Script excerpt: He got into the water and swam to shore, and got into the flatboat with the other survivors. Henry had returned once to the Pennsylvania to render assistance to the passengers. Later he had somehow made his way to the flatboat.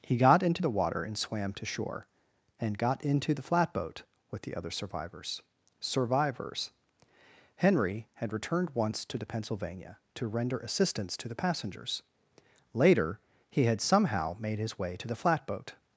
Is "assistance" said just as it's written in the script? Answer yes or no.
yes